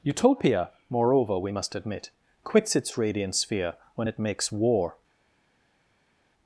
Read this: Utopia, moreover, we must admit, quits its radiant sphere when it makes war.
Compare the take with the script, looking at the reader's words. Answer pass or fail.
pass